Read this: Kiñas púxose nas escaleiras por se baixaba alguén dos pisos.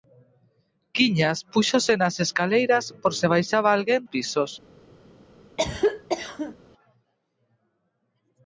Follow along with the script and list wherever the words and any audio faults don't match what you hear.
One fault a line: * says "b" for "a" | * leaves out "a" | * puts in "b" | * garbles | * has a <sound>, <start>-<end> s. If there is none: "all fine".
* leaves out "dos"
* has a cough, 5.6-6.6 s